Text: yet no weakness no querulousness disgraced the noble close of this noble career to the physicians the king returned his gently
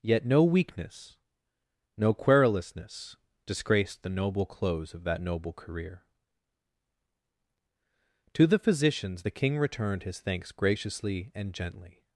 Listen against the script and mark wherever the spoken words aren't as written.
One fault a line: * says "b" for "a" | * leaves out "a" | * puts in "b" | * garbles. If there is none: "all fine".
* says "that" for "this"
* puts in "thanks graciously and"